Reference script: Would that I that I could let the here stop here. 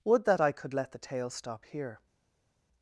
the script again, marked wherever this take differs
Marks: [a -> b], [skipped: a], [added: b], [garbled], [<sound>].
Would that I [skipped: that I] could let the [here -> tale] stop here.